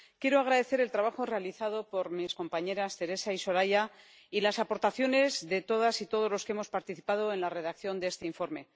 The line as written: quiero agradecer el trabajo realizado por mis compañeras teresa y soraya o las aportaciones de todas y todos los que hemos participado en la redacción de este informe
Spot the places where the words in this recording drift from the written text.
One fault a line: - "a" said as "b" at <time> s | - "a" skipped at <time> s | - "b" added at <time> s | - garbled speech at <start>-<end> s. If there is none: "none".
- "o" said as "y" at 4.3 s